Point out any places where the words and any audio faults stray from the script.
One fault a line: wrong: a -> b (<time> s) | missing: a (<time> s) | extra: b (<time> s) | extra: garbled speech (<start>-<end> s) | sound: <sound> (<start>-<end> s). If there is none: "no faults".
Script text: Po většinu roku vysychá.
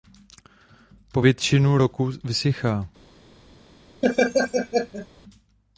sound: laugh (4.0-5.1 s)